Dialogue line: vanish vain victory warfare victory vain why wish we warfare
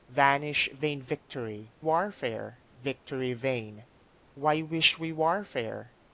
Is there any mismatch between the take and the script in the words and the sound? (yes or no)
no